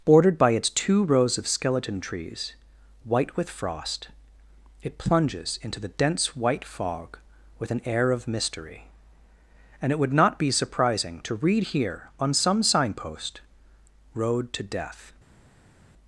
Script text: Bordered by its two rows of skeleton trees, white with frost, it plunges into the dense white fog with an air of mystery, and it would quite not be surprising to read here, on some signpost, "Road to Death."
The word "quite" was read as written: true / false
false